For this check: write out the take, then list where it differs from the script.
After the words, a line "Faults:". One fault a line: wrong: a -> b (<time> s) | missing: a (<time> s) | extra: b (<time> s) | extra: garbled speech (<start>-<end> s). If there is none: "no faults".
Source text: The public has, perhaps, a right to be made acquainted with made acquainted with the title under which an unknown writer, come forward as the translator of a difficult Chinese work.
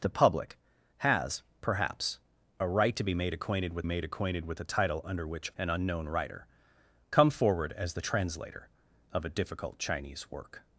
The public has, perhaps, a right to be made acquainted with made acquainted with the title under which an unknown writer, come forward as the translator of a difficult Chinese work.
Faults:
no faults